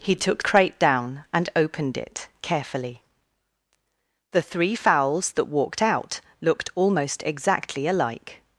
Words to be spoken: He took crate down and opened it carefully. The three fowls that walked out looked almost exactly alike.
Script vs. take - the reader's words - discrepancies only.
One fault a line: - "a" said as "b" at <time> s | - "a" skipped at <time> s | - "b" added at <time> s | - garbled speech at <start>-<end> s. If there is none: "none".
none